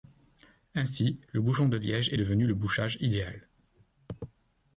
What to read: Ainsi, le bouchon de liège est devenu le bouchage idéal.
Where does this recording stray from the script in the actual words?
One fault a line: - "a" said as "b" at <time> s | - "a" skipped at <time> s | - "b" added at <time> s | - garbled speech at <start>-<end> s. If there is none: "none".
none